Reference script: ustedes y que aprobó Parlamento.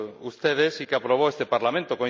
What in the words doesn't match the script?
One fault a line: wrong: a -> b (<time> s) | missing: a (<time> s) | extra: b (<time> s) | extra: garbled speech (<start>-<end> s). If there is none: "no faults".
extra: este (1.3 s)